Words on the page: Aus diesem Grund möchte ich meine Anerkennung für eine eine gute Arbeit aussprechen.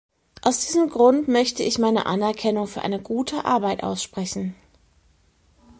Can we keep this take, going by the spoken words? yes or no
no